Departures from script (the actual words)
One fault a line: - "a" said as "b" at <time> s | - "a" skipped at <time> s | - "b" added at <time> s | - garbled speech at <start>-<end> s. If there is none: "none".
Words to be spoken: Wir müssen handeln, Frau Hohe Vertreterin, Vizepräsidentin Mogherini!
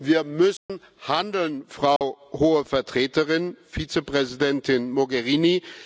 none